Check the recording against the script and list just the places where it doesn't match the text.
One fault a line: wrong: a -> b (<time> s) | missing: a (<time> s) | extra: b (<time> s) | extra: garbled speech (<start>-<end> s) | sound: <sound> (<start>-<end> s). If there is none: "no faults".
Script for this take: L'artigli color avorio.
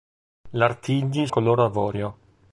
no faults